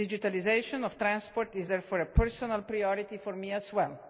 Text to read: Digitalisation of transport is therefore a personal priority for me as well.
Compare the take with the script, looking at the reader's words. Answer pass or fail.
pass